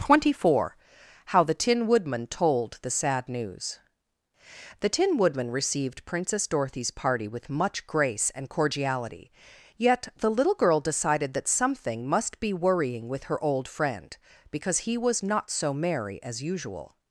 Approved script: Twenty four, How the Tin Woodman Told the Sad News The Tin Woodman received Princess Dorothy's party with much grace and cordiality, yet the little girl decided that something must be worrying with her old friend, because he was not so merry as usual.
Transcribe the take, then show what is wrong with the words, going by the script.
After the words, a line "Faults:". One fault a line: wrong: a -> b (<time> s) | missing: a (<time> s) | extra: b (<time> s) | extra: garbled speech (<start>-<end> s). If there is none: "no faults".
Twenty four, How the Tin Woodman Told the Sad News The Tin Woodman received Princess Dorothy's party with much grace and cordiality, yet the little girl decided that something must be worrying with her old friend, because he was not so merry as usual.
Faults:
no faults